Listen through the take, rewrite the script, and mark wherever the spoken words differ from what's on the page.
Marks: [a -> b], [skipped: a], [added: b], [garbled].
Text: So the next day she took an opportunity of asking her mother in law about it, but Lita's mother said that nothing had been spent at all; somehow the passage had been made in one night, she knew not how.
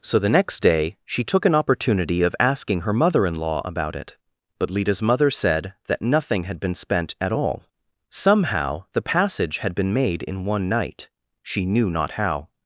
So the next day she took an opportunity of asking her mother in law about it, but Lita's mother said that nothing had been spent at all; somehow the passage had been made in one night, she knew not how.